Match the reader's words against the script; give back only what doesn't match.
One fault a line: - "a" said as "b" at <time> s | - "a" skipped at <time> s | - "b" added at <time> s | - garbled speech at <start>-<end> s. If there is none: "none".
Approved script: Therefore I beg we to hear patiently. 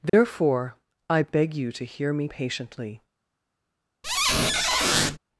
- "we" said as "you" at 1.5 s
- "me" added at 2.1 s